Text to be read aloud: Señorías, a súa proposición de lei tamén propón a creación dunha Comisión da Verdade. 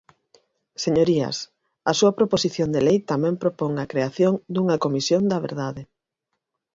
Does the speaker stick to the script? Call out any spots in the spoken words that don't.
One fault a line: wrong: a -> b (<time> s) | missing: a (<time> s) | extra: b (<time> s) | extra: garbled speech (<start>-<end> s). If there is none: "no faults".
no faults